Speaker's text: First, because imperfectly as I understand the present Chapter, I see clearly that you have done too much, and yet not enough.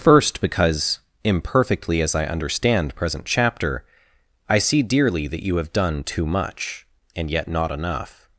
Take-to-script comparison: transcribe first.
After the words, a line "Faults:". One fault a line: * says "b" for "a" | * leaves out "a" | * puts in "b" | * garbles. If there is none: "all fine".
First, because imperfectly as I understand present Chapter, I see dearly that you have done too much, and yet not enough.
Faults:
* leaves out "the"
* says "dearly" for "clearly"